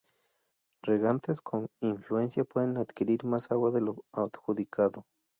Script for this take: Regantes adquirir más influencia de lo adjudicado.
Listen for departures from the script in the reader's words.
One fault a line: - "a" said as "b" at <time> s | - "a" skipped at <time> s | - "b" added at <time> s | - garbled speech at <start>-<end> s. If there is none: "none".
- "con influencia pueden" added at 1.4 s
- "influencia" said as "agua" at 3.5 s